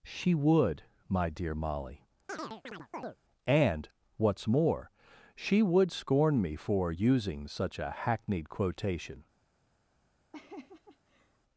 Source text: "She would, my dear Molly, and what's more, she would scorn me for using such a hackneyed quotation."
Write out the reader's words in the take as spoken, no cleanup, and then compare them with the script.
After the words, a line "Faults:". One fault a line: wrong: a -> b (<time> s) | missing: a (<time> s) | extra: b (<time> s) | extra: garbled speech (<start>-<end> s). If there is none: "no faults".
"She would, my dear Molly, and what's more, she would scorn me for using such a hackneyed quotation."
Faults:
no faults